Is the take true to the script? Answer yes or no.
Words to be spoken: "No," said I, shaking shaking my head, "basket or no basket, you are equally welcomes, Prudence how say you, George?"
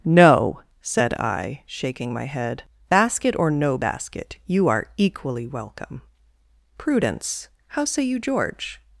no